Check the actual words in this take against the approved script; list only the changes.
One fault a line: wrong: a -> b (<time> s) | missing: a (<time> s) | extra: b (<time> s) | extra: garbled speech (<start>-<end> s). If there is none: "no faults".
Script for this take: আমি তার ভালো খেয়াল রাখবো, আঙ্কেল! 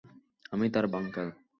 missing: ভালো খেয়াল রাখবো (0.8 s)